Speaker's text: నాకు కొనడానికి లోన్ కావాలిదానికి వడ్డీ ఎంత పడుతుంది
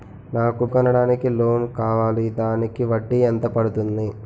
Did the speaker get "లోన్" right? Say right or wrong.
right